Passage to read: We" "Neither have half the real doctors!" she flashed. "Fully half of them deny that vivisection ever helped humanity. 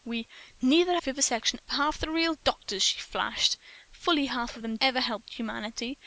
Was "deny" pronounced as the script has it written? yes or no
no